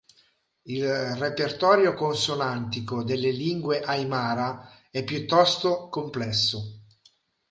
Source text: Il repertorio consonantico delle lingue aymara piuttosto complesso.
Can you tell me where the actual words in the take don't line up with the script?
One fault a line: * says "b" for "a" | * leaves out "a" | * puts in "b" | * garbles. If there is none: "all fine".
* puts in "è"